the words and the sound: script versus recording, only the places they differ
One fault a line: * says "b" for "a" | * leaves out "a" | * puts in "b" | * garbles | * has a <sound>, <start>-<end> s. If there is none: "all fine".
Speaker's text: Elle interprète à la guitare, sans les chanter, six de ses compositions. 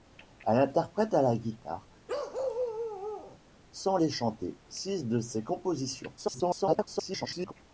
* has a bark, 2.1-3.4 s
* garbles